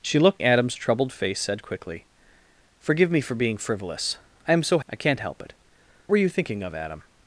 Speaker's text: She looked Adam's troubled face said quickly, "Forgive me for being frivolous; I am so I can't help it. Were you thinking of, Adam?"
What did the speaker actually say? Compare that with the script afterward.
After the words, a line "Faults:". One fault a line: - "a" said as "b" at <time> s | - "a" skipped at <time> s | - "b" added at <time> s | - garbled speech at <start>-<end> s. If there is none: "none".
She looked Adam's troubled face said quickly, "Forgive me for being frivolous; I am so I can't help it. Were you thinking of, Adam?"
Faults:
none